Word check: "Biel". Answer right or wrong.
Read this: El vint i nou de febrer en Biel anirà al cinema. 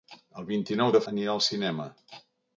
wrong